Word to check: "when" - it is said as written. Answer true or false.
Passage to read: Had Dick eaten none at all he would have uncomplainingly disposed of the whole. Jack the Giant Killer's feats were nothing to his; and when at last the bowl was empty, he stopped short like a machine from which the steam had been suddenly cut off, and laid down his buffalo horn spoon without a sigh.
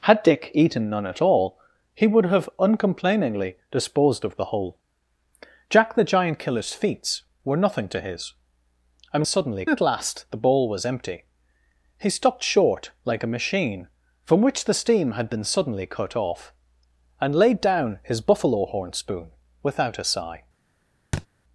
false